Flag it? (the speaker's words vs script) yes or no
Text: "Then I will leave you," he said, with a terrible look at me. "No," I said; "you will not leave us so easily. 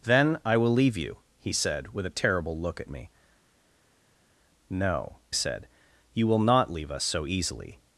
yes